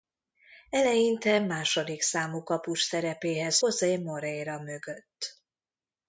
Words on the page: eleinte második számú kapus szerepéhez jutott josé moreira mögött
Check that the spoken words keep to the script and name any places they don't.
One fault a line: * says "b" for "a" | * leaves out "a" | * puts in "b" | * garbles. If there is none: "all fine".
* leaves out "jutott"